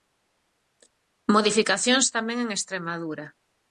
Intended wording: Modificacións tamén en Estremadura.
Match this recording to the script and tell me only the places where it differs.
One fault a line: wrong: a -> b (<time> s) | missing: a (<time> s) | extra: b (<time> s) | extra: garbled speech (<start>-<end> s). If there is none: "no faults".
no faults